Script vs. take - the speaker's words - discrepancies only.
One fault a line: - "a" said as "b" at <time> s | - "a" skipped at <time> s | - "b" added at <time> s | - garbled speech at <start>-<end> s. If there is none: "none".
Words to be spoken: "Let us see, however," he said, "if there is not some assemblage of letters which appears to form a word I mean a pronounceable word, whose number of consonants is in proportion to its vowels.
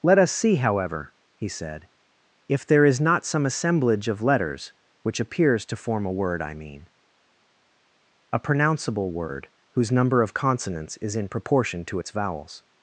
none